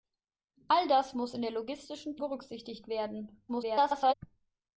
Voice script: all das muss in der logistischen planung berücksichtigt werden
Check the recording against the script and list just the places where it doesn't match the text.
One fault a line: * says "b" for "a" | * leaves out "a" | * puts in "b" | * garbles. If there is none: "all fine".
* leaves out "planung"
* garbles